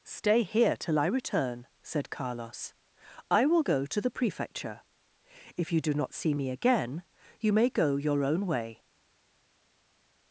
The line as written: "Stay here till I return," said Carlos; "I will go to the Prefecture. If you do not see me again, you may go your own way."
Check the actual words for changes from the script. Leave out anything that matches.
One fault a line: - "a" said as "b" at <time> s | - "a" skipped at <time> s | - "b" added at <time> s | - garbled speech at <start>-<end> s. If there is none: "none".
none